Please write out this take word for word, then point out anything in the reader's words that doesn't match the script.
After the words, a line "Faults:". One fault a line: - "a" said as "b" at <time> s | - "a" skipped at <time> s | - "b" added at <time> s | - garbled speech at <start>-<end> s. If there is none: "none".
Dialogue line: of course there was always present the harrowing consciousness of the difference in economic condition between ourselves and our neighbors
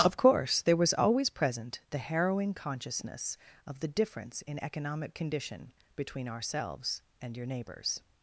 of course there was always present the harrowing consciousness of the difference in economic condition between ourselves and your neighbors
Faults:
- "our" said as "your" at 7.3 s